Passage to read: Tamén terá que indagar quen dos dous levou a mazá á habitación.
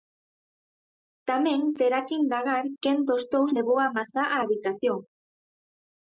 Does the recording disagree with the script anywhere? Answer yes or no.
no